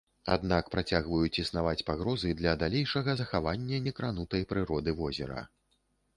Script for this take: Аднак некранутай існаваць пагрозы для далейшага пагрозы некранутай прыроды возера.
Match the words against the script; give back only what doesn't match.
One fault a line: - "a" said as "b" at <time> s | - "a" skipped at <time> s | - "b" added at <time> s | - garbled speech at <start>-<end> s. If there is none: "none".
- "некранутай" said as "працягваюць" at 0.8 s
- "пагрозы" said as "захавання" at 3.2 s